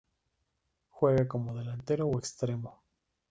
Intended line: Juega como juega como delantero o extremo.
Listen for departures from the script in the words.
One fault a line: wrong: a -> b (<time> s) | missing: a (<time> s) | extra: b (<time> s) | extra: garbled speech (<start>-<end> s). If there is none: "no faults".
missing: juega como (1.5 s)